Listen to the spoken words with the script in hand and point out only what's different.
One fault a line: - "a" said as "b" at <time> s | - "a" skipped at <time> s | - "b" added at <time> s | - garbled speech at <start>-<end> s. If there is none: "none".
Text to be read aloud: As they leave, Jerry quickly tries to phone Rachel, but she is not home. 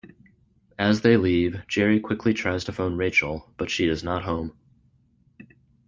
none